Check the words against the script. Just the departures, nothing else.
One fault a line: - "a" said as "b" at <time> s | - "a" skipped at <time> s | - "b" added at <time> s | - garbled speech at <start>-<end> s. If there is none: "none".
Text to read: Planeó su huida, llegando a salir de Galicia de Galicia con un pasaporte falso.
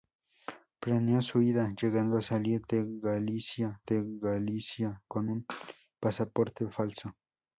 none